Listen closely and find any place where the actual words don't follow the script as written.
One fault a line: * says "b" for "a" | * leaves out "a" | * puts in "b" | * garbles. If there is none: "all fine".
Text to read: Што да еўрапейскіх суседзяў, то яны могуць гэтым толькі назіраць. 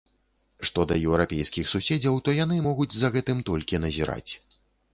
* puts in "за"